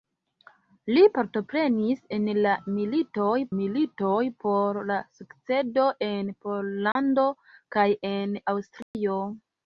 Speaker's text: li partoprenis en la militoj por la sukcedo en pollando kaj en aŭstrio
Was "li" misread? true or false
false